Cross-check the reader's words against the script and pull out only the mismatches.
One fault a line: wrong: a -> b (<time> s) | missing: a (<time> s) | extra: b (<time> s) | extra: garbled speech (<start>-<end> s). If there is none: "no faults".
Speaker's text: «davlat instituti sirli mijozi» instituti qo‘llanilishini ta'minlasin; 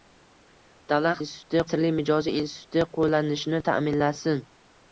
no faults